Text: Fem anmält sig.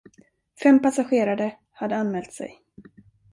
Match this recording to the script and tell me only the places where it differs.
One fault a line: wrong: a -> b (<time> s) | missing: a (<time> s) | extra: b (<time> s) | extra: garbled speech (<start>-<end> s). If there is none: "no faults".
extra: passagerare hade (0.8 s)